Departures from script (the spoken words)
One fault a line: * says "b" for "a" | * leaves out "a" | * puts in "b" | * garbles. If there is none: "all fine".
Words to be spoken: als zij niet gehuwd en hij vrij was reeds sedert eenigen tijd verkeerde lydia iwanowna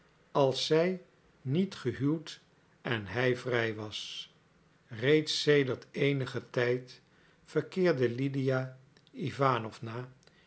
all fine